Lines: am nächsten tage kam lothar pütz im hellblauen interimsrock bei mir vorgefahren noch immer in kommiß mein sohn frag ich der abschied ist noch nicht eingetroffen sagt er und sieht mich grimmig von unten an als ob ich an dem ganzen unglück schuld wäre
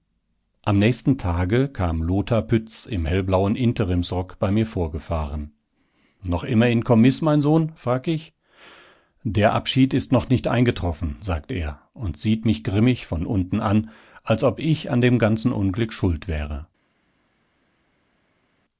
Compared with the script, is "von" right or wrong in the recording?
right